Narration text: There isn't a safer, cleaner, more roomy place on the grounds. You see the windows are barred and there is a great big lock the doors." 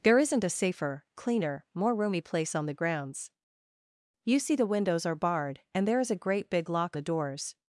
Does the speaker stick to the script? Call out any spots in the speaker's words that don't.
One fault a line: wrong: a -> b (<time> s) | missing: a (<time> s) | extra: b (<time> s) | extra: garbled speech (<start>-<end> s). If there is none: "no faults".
no faults